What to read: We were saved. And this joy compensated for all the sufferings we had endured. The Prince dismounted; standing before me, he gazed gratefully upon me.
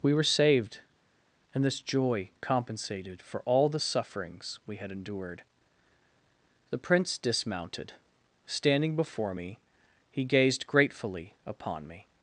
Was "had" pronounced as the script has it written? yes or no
yes